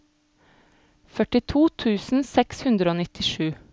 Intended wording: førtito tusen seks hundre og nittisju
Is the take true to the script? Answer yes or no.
yes